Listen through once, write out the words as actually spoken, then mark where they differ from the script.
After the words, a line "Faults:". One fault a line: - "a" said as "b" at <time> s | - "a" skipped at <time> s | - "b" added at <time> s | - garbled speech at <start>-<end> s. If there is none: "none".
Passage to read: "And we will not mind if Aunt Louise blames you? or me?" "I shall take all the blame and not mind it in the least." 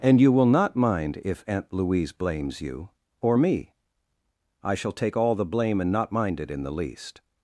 "And you will not mind if Aunt Louise blames you? or me?" "I shall take all the blame and not mind it in the least."
Faults:
- "we" said as "you" at 0.2 s